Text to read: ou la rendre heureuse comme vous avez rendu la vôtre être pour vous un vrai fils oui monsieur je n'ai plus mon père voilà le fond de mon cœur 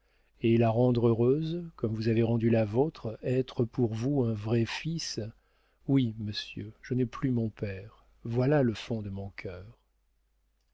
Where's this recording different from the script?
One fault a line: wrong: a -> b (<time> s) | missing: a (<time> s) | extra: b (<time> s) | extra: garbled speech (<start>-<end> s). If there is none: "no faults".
wrong: ou -> et (0.4 s)